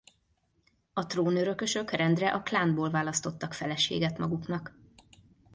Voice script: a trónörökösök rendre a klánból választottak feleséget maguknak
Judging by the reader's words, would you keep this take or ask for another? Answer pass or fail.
pass